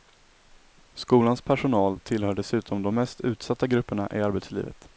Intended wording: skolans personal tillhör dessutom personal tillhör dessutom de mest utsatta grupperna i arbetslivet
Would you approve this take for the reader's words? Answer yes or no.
no